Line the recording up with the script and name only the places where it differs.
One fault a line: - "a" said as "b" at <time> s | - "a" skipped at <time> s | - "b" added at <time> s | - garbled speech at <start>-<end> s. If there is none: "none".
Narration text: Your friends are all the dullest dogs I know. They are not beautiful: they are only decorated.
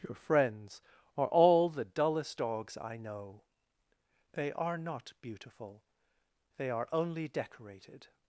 none